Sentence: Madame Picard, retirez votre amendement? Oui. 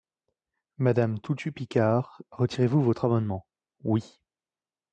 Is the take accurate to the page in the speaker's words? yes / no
no